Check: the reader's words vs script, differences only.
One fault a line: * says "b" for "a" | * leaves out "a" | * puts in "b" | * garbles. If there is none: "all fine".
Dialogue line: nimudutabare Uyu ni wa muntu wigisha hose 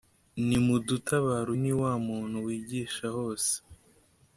* leaves out "Uyu"